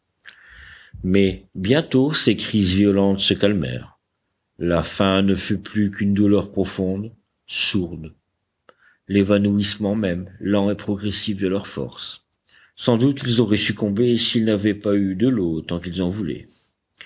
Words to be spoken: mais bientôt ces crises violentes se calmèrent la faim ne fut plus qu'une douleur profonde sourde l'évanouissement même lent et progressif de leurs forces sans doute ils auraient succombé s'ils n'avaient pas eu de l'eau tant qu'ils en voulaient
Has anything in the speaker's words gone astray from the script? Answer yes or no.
no